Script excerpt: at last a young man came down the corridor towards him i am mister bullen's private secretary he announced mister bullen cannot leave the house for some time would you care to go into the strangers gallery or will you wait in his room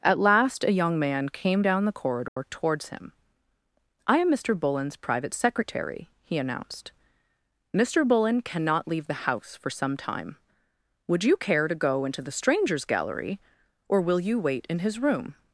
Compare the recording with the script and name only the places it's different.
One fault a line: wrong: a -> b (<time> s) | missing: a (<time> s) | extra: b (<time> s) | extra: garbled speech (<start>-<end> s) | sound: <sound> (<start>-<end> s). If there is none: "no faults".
sound: dropout (2.3-2.4 s)